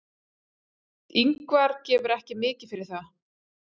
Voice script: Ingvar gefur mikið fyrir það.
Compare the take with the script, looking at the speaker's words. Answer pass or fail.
fail